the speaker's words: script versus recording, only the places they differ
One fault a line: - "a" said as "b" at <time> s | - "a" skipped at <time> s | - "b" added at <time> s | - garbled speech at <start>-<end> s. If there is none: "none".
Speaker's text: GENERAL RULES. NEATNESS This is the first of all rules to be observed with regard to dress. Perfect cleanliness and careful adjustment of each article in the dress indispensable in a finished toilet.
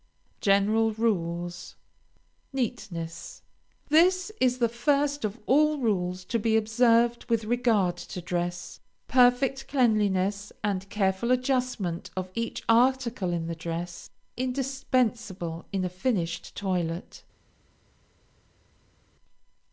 none